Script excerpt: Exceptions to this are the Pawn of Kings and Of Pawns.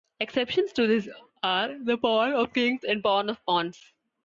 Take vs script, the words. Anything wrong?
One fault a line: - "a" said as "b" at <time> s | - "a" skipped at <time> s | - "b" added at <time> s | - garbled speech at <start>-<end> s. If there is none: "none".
- "Pawn" added at 3.0 s